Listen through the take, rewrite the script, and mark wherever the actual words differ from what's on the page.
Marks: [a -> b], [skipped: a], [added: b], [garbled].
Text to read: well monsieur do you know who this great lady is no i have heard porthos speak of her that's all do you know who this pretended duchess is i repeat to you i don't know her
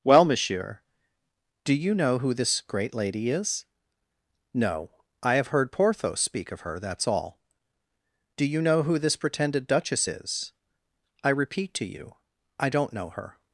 well monsieur do you know who this great lady is no i have heard porthos speak of her that's all do you know who this pretended duchess is i repeat to you i don't know her